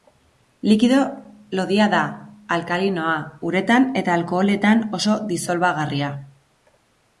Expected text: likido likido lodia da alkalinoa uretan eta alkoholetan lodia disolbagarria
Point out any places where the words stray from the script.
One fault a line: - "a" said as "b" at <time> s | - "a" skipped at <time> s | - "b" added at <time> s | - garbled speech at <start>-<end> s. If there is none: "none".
- "likido" skipped at 1.0 s
- "lodia" said as "oso" at 5.0 s